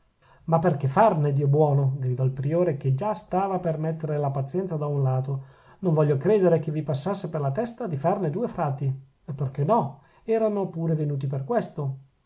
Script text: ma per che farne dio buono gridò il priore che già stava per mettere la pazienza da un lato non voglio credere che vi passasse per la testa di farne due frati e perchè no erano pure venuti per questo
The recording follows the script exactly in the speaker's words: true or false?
true